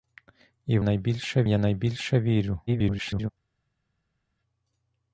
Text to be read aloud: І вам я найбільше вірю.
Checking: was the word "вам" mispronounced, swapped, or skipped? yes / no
yes